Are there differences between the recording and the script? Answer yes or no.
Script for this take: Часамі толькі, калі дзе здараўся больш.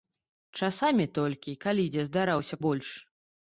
no